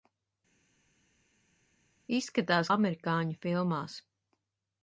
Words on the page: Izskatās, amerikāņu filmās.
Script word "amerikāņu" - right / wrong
right